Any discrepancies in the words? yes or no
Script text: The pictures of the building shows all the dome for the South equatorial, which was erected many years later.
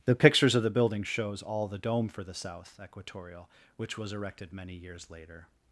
no